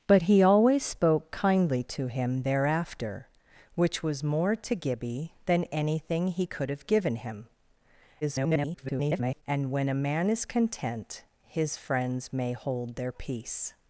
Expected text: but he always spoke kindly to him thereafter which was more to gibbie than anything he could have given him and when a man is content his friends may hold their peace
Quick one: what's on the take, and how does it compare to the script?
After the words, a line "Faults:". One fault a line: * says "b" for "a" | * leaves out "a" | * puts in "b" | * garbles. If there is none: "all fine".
but he always spoke kindly to him thereafter which was more to gibbie than anything he could have given him [garbled] and when a man is content his friends may hold their peace
Faults:
* garbles